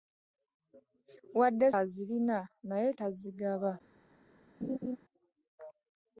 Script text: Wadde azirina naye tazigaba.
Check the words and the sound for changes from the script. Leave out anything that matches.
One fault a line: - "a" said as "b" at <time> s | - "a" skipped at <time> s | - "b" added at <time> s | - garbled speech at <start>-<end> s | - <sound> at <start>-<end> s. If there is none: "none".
- laugh at 4.6-5.0 s